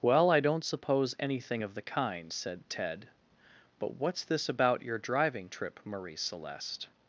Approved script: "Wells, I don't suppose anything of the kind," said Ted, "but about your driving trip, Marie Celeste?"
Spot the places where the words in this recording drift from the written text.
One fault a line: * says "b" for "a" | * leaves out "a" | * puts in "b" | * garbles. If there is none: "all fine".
* says "Well" for "Wells"
* puts in "what's this"